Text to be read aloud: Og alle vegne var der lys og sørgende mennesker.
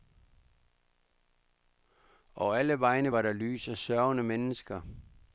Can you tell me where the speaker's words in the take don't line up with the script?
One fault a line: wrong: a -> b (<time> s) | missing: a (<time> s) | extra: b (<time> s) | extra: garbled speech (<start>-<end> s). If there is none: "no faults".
no faults